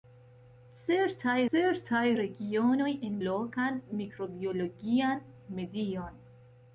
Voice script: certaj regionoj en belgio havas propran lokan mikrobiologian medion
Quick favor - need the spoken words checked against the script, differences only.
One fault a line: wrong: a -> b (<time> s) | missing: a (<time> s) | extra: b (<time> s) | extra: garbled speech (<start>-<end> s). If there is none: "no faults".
extra: certaj (1.5 s)
missing: belgio havas propran (3.1 s)